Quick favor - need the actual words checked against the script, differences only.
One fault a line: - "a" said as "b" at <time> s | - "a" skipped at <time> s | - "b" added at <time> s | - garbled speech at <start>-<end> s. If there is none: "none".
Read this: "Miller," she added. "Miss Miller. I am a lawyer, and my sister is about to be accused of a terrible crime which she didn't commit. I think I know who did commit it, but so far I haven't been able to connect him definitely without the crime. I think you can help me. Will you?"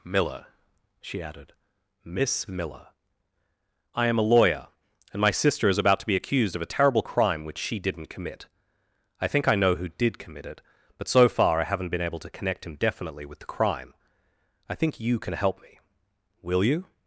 - "without" said as "with" at 13.3 s